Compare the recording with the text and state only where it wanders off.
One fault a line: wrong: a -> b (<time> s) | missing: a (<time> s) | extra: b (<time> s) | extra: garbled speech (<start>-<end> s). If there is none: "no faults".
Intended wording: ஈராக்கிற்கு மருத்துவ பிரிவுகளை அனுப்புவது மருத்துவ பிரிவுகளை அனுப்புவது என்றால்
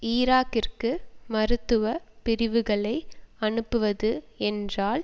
missing: மருத்துவ பிரிவுகளை அனுப்புவது (4.1 s)